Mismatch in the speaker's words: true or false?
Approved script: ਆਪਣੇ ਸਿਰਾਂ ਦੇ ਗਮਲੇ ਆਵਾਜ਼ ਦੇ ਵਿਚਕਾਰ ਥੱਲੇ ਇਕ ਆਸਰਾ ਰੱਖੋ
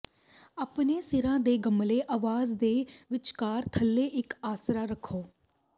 false